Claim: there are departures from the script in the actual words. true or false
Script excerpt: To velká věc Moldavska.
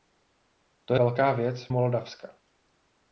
false